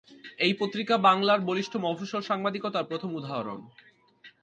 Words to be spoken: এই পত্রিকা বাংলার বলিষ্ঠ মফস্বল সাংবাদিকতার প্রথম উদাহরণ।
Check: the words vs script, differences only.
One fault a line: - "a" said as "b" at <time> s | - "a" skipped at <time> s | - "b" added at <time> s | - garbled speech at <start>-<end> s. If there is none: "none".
none